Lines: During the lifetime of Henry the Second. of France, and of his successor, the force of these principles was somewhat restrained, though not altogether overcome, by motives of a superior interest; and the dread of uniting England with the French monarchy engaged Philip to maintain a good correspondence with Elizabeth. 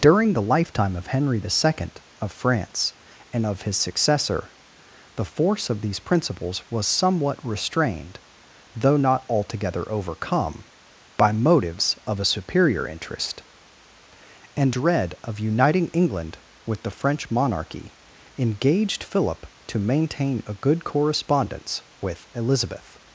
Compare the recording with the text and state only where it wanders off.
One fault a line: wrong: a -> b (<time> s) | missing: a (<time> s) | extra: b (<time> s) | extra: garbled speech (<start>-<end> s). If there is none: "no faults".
missing: the (14.7 s)